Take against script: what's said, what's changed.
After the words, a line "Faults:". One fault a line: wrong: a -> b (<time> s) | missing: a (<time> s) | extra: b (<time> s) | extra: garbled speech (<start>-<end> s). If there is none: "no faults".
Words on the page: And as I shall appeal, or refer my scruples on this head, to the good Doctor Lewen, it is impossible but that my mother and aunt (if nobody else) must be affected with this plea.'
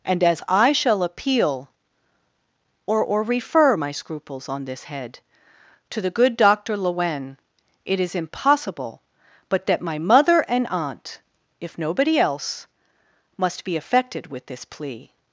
And as I shall appeal, or or refer my scruples on this head, to the good Doctor Lewen, it is impossible but that my mother and aunt (if nobody else) must be affected with this plea.'
Faults:
extra: or (3.0 s)